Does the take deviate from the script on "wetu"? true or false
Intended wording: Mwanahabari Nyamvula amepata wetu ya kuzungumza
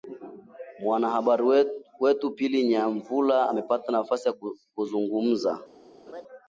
true